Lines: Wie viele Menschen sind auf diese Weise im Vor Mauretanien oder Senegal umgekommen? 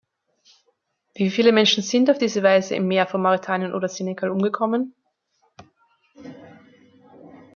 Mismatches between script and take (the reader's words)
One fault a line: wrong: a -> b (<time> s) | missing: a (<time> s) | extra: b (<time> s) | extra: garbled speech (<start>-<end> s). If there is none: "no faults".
extra: Meer (2.9 s)